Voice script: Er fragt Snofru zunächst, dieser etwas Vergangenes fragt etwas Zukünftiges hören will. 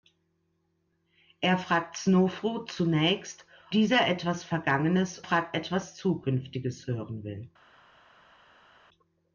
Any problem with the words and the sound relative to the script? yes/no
no